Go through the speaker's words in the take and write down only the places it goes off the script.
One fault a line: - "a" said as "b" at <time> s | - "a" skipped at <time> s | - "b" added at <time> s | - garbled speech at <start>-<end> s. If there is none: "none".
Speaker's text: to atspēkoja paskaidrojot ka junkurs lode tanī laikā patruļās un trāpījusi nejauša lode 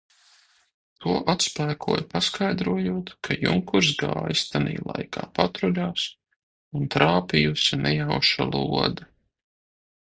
- "lode" said as "gājis" at 4.0 s